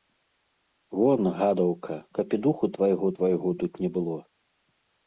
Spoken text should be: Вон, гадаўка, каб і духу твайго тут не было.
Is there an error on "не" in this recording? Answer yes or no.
no